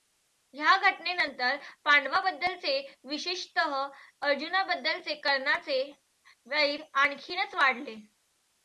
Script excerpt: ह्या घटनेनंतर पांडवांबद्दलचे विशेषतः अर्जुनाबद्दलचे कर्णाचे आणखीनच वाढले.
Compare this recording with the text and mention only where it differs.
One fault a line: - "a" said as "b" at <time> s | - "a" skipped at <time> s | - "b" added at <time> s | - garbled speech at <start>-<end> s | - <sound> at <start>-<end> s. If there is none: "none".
- "वैर" added at 6.5 s